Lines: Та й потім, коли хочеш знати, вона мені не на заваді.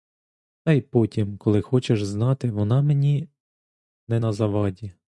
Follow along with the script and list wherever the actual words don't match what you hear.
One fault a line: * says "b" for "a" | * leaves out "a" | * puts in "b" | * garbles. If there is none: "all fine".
all fine